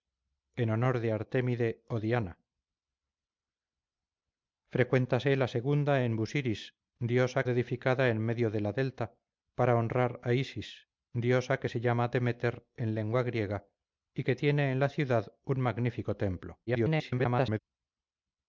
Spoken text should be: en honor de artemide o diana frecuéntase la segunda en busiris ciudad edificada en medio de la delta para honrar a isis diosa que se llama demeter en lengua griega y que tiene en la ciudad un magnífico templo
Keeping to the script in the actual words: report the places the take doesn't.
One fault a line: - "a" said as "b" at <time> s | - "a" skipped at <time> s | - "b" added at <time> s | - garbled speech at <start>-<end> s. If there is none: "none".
- "ciudad" said as "diosa" at 7.0 s
- garbled speech at 16.7-17.6 s